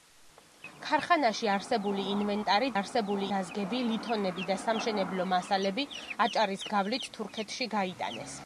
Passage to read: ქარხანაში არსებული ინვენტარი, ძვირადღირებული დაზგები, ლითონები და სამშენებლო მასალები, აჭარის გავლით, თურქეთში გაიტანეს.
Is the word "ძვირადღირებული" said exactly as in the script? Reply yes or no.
no